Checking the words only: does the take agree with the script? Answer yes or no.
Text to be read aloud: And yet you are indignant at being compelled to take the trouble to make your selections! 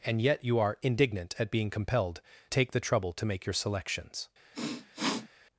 no